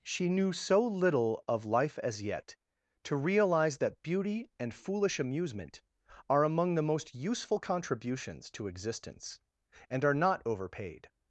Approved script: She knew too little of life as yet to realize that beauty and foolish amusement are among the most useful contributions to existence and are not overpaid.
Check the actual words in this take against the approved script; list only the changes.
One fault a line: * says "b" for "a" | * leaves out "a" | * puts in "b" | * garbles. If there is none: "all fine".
* says "so" for "too"